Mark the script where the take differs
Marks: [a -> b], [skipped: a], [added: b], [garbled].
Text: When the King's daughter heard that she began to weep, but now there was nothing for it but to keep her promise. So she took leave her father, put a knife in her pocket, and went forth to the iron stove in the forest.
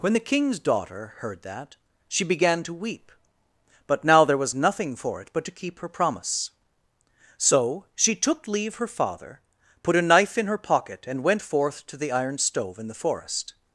When the King's daughter heard that she began to weep, but now there was nothing for it but to keep her promise. So she took leave her father, put a knife in her pocket, and went forth to the iron stove in the forest.